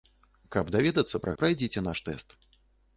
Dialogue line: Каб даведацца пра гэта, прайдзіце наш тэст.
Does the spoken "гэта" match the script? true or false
false